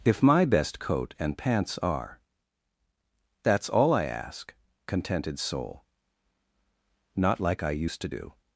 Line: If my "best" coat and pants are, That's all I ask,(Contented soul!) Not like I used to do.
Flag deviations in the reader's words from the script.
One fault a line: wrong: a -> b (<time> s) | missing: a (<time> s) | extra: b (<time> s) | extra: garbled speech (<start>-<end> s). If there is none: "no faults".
no faults